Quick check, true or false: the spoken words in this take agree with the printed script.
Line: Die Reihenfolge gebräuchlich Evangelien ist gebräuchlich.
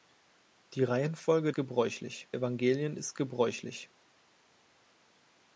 true